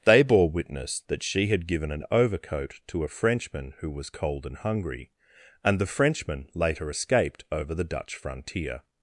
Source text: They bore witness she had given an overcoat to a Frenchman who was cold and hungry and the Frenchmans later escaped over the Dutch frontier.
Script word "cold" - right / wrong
right